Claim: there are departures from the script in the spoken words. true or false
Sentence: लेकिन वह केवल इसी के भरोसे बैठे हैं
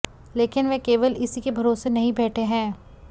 true